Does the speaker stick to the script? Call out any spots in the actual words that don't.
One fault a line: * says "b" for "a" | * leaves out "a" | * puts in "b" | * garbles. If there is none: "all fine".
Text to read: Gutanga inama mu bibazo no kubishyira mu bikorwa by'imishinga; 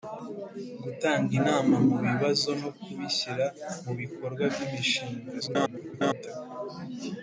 * garbles